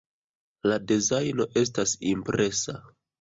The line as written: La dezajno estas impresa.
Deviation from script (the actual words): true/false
false